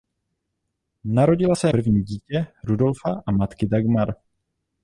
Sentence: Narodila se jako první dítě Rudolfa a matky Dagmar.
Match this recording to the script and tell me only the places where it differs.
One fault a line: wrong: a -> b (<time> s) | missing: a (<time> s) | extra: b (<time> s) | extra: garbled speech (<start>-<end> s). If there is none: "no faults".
missing: jako (1.7 s)